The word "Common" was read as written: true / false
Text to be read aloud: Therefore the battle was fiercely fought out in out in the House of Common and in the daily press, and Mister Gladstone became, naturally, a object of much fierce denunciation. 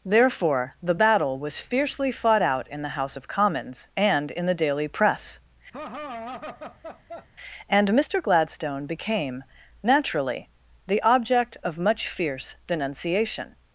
false